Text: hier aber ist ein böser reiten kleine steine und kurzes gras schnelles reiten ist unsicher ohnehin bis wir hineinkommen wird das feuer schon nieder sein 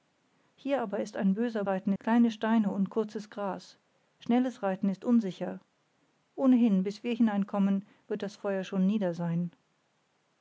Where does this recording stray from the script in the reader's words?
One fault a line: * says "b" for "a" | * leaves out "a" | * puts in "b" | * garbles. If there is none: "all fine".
all fine